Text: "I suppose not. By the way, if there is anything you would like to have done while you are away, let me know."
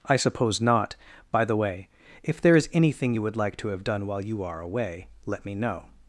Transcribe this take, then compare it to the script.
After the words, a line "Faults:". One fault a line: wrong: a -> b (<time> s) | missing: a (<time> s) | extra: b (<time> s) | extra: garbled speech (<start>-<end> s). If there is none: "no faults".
"I suppose not. By the way, if there is anything you would like to have done while you are away, let me know."
Faults:
no faults